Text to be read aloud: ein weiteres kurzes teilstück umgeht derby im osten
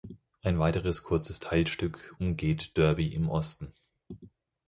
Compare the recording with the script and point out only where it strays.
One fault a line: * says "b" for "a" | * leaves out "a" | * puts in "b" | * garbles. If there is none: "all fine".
all fine